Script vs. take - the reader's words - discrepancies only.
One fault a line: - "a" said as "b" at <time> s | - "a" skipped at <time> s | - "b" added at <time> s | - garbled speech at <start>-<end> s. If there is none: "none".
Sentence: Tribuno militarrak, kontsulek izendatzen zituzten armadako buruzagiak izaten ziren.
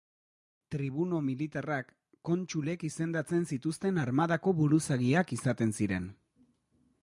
none